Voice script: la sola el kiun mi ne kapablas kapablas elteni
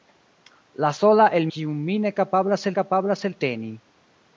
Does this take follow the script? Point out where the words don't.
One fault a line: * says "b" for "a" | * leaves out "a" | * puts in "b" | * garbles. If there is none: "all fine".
all fine